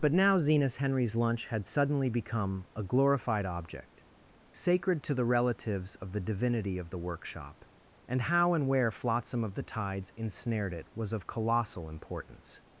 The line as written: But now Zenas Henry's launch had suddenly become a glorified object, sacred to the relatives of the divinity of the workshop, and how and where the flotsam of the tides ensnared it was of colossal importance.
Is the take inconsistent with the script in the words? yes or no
yes